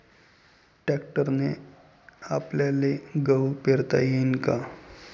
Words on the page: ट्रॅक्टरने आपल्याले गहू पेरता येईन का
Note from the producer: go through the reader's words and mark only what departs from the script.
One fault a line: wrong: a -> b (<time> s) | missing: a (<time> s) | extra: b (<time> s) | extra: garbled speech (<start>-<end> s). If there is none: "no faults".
no faults